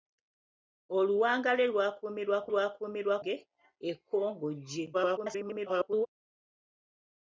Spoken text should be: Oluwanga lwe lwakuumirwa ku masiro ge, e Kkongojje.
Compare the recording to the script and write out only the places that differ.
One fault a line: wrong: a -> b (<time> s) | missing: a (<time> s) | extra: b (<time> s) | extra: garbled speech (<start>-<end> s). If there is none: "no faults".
wrong: masiro -> lwakuumirwa (2.5 s)
extra: garbled speech (4.9-6.1 s)